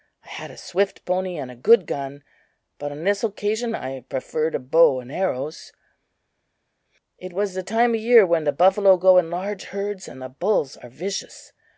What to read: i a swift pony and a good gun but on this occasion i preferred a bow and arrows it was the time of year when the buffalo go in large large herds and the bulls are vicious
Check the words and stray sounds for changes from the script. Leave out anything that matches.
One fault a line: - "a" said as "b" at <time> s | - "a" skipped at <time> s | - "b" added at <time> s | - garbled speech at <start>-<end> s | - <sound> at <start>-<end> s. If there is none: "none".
- "had" added at 0.3 s
- "large" skipped at 9.6 s